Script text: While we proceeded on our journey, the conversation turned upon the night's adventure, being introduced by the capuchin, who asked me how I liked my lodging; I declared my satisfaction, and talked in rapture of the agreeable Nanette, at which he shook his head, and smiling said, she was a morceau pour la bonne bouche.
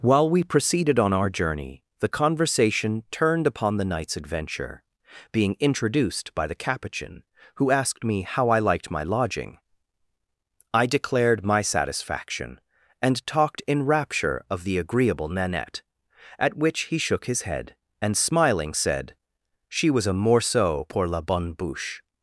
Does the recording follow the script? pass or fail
pass